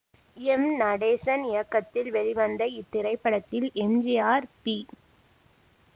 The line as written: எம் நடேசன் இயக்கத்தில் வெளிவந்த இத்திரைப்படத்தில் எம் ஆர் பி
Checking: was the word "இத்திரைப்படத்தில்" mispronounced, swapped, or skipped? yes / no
no